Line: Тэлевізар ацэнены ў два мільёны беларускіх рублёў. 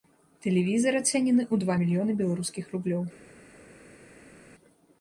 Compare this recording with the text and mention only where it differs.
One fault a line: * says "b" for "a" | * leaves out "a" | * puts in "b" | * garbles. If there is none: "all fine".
all fine